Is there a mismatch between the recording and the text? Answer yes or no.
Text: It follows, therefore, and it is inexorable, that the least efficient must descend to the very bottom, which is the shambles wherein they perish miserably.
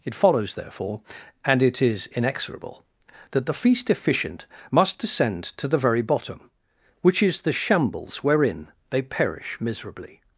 yes